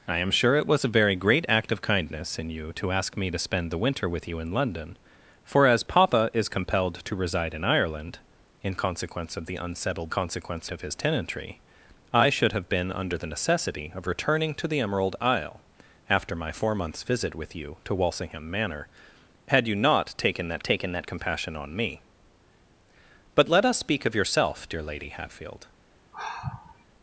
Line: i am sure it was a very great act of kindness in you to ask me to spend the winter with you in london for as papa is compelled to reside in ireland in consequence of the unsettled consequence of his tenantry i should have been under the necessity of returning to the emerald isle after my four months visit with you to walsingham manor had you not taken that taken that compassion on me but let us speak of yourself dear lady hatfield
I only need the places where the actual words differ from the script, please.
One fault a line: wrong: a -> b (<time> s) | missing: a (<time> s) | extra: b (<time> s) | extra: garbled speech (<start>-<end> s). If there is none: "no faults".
no faults